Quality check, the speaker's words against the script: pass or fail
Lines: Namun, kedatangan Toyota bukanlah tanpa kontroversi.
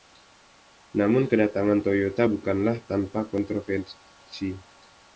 pass